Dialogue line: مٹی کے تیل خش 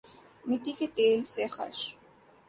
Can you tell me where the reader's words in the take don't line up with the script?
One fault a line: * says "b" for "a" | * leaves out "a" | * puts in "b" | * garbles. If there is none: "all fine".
* puts in "سے"